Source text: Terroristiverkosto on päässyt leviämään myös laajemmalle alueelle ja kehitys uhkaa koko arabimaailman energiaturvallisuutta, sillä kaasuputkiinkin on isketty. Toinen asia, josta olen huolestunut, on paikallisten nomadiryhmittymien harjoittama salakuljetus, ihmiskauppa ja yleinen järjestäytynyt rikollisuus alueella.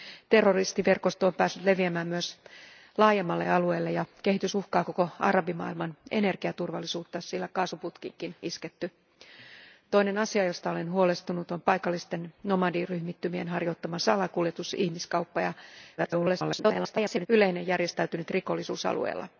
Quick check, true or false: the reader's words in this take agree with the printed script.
false